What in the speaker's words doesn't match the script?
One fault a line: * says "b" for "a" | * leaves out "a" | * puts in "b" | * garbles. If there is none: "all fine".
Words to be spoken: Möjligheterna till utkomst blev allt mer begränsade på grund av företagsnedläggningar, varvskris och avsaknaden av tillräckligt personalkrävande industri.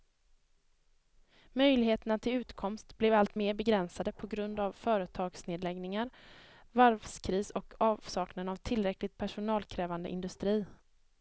all fine